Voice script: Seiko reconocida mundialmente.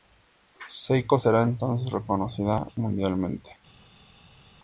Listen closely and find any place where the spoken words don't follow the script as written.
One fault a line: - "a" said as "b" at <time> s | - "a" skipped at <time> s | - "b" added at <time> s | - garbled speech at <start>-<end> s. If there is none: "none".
- "será entonces" added at 1.2 s